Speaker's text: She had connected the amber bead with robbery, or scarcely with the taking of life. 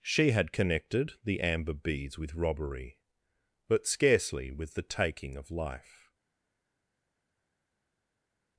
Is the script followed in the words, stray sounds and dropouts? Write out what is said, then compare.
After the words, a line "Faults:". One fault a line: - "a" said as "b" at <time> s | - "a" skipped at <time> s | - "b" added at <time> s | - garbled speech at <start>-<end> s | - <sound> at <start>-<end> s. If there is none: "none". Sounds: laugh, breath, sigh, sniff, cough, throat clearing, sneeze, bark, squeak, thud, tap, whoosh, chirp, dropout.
She had connected the amber beads with robbery, but scarcely with the taking of life.
Faults:
- "bead" said as "beads" at 1.8 s
- "or" said as "but" at 3.7 s